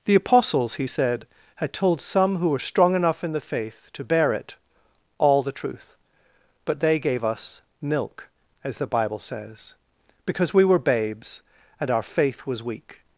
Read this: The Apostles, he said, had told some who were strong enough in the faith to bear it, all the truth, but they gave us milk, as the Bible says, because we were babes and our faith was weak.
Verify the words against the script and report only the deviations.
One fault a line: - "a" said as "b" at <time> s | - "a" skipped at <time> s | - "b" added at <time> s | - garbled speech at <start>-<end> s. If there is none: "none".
none